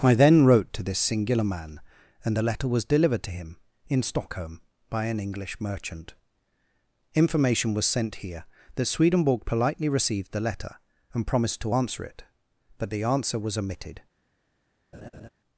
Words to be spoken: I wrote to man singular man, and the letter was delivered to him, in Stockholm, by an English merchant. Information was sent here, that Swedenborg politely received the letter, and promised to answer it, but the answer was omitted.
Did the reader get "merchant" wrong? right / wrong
right